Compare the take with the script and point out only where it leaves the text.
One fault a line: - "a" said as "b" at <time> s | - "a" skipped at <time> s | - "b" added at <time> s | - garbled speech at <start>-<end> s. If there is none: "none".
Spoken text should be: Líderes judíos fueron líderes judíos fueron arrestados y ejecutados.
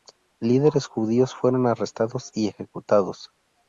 - "líderes judíos fueron" skipped at 1.7 s